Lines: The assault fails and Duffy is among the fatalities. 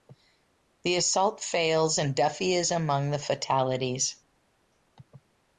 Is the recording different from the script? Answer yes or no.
no